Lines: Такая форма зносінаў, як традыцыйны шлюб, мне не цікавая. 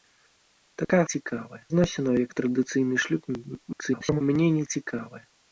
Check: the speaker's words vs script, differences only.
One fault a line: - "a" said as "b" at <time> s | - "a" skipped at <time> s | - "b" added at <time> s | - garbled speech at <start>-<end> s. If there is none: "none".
- "форма" said as "цікавая" at 1.1 s
- garbled speech at 3.7-4.2 s